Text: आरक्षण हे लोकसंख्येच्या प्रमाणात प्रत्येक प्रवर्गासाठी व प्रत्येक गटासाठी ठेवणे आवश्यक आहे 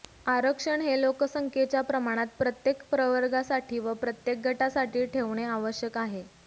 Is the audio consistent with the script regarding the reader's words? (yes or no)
yes